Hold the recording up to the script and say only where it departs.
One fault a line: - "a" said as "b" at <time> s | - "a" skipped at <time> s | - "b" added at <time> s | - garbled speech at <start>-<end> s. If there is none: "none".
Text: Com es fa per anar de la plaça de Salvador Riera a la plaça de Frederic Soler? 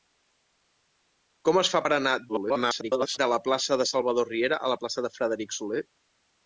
- garbled speech at 2.3-3.2 s